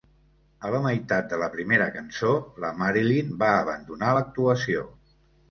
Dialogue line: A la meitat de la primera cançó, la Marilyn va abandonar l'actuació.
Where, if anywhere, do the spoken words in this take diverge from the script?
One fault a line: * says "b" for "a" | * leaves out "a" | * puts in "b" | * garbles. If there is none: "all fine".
all fine